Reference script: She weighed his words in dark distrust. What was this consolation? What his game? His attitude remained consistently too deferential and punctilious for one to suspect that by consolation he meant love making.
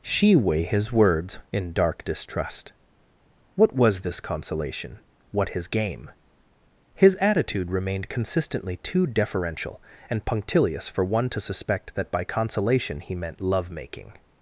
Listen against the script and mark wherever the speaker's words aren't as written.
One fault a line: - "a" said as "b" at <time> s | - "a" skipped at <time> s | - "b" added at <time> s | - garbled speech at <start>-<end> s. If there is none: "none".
- "weighed" said as "weigh" at 0.3 s